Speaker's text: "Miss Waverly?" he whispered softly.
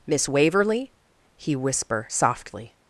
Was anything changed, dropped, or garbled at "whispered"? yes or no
yes